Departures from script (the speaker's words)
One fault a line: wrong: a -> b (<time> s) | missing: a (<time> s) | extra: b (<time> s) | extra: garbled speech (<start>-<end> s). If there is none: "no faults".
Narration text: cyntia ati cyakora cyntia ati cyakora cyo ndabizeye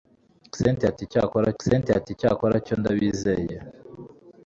no faults